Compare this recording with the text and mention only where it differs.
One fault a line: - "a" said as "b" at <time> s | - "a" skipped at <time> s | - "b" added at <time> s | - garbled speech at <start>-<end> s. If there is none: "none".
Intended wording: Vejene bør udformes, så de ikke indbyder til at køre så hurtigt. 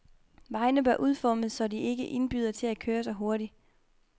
none